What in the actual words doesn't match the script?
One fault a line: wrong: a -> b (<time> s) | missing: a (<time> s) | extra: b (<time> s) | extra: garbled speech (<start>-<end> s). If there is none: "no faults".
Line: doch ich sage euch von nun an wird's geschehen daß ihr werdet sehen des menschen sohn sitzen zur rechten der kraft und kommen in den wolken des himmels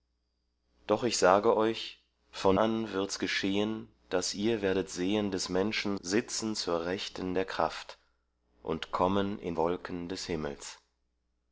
missing: nun (2.6 s)
missing: sohn (6.0 s)
missing: den (9.6 s)